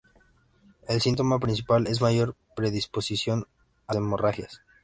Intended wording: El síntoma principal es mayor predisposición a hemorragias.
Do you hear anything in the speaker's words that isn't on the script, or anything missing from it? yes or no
no